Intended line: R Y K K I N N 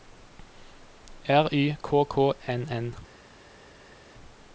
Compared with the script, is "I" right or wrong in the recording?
wrong